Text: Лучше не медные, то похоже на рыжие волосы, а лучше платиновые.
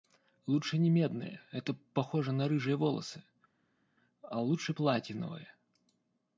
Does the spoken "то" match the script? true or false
false